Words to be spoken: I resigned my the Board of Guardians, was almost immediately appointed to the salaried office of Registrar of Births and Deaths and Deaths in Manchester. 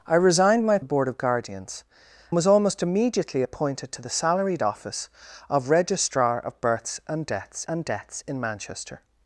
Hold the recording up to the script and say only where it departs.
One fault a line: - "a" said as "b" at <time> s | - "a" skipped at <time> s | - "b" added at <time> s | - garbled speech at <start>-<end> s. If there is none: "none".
none